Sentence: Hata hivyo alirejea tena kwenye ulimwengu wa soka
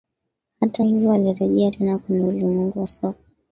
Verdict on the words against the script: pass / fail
pass